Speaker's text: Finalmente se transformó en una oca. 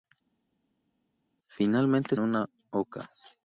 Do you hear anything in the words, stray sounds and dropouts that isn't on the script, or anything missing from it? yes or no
yes